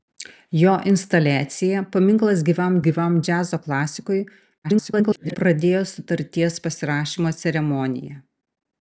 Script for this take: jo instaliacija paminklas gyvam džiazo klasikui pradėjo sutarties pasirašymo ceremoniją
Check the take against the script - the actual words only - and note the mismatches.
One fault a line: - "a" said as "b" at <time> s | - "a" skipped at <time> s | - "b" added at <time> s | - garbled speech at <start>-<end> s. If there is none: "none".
- "gyvam" added at 2.9 s
- garbled speech at 4.6-5.4 s